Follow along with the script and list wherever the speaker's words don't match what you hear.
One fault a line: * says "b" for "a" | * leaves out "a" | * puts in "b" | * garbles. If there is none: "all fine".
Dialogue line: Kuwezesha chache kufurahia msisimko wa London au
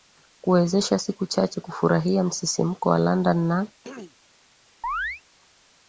* puts in "siku"
* says "na" for "au"